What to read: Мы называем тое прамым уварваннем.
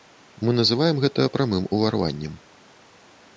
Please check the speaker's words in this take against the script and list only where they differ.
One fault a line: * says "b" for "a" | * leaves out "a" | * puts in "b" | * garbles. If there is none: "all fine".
* says "гэта" for "тое"